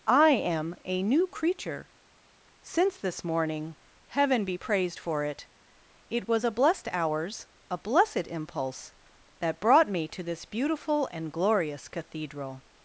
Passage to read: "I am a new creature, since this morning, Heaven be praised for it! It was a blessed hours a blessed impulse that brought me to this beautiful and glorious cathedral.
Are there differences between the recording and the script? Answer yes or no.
no